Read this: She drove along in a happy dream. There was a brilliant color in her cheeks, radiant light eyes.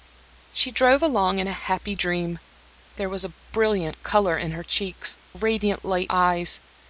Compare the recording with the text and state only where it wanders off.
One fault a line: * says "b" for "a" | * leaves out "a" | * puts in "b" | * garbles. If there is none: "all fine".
all fine